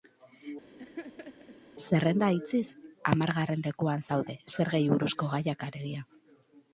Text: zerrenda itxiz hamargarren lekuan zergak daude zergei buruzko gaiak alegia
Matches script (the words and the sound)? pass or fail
fail